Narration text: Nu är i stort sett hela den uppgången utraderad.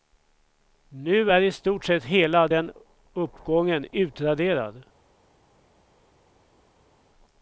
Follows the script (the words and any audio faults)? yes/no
yes